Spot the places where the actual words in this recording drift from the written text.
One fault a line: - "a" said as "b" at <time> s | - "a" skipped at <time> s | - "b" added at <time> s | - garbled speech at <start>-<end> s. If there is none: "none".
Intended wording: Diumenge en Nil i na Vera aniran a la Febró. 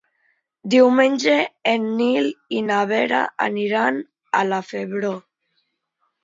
none